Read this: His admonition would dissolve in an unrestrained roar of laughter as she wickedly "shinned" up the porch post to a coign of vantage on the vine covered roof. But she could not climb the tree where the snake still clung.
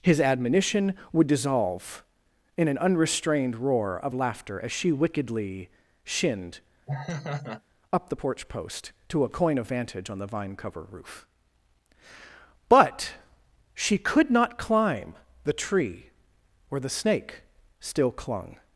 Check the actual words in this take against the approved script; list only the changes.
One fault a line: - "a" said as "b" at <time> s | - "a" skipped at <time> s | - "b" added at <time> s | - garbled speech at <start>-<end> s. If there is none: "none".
- "covered" said as "cover" at 10.5 s